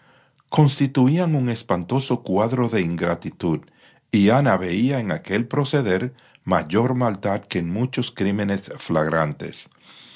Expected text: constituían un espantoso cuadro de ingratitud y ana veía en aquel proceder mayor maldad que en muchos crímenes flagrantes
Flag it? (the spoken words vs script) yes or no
no